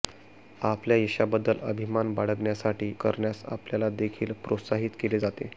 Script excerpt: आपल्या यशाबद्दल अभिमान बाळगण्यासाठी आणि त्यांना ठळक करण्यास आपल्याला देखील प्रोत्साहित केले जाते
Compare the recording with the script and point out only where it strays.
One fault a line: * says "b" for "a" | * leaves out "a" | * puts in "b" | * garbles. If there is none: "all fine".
* leaves out "आणि त्यांना ठळक"